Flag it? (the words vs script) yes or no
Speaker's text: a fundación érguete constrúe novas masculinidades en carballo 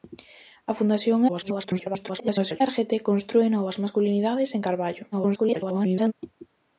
yes